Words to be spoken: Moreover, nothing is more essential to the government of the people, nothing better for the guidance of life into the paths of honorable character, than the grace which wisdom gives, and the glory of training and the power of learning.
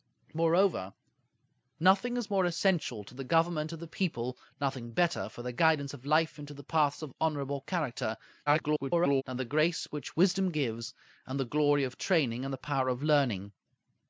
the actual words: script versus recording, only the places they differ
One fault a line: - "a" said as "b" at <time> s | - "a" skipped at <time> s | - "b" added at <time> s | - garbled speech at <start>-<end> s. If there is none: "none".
- garbled speech at 8.5-9.2 s